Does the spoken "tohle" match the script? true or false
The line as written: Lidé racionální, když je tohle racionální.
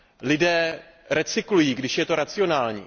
false